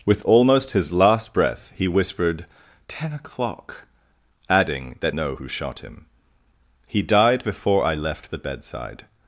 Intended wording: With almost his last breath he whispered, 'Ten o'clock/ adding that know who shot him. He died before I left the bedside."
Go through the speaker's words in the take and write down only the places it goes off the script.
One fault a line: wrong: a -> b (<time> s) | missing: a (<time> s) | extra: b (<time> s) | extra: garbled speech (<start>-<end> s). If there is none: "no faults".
no faults